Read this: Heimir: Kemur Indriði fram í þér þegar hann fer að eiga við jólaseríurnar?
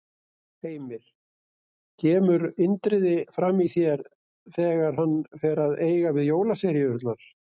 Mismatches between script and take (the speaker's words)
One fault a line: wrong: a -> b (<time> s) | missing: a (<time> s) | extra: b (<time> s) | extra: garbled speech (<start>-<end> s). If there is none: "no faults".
no faults